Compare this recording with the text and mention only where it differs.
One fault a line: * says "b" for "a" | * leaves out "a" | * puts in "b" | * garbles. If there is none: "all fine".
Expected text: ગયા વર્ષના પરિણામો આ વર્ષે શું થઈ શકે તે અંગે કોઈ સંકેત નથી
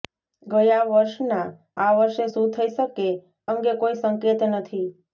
* leaves out "પરિણામો"
* leaves out "તે"